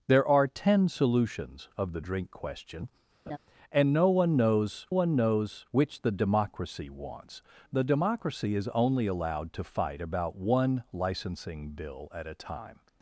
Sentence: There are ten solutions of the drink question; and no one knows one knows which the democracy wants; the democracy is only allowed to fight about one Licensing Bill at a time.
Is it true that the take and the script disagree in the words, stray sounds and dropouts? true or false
true